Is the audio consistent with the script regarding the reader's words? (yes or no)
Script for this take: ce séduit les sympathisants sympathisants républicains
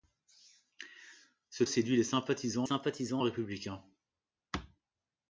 yes